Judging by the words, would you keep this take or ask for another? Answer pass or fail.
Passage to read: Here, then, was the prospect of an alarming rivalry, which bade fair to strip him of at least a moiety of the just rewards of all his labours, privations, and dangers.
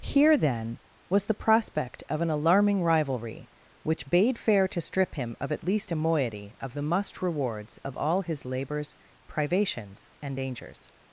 fail